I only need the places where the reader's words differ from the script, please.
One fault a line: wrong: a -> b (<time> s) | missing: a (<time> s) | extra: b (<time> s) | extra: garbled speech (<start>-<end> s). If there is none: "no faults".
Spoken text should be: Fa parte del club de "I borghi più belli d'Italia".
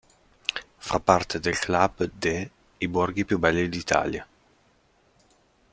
no faults